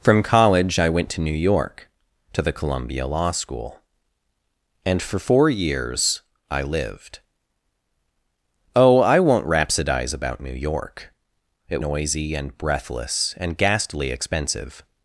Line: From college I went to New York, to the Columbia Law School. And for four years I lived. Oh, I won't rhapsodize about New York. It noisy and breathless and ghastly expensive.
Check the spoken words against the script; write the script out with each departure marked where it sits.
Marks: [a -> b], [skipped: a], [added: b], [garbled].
From college I went to New York, to the Columbia Law School. And for four years I lived. Oh, I won't rhapsodize about New York. It noisy and breathless and ghastly expensive.